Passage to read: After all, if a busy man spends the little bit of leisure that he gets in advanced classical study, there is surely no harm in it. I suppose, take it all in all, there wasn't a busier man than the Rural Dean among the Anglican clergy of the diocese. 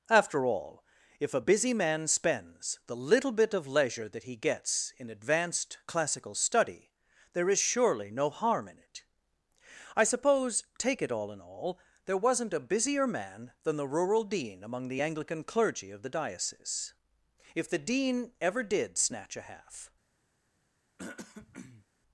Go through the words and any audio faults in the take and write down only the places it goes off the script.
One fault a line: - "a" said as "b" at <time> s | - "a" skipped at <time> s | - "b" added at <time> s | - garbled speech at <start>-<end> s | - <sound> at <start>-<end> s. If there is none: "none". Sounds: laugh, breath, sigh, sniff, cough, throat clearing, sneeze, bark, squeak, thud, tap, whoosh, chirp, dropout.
- "If the Dean ever did snatch a half" added at 17.5 s
- throat clearing at 21.0-21.9 s